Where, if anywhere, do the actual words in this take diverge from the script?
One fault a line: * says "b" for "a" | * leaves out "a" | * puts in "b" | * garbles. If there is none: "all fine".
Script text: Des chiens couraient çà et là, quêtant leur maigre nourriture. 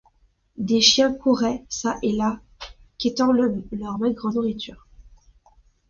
all fine